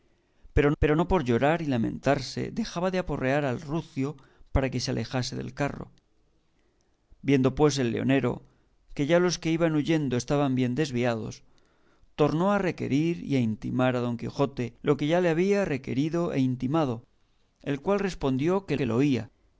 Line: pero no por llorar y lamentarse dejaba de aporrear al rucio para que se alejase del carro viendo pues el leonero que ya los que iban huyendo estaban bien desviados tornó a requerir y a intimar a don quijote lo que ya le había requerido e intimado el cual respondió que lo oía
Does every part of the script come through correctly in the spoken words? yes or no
no